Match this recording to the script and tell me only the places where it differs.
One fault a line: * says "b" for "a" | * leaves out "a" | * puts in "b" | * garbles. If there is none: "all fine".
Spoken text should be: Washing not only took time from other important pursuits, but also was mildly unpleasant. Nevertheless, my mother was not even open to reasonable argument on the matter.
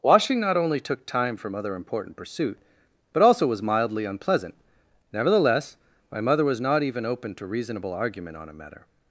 * says "pursuit" for "pursuits"
* says "a" for "the"